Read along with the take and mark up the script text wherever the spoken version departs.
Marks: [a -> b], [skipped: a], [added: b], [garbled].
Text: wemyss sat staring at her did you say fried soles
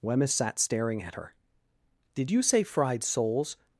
wemyss sat staring at her did you say fried soles